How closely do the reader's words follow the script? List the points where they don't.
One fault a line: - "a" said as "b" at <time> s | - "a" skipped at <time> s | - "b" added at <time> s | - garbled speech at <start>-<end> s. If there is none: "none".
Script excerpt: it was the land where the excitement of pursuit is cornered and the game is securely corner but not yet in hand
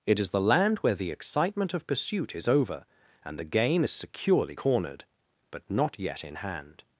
- "was" said as "is" at 0.2 s
- "cornered" said as "over" at 2.5 s
- "corner" said as "cornered" at 4.5 s